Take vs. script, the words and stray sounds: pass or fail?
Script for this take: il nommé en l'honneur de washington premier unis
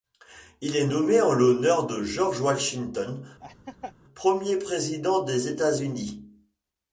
fail